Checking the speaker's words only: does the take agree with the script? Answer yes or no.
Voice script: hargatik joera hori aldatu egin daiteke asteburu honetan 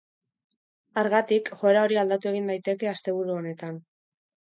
yes